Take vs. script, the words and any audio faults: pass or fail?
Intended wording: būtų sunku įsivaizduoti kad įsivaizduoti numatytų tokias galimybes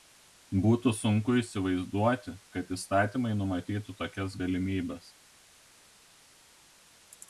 fail